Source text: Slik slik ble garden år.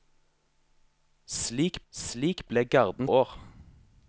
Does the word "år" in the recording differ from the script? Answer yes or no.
no